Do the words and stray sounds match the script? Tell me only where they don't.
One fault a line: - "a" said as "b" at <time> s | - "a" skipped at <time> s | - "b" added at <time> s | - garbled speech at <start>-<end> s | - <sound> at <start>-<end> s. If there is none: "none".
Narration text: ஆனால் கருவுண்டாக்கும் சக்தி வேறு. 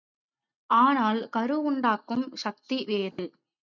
- dropout at 3.1-3.2 s